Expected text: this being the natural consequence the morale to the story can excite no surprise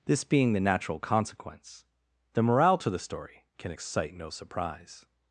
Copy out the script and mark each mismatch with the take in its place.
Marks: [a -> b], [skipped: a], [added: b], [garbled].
this being the natural consequence the morale to the story can excite no surprise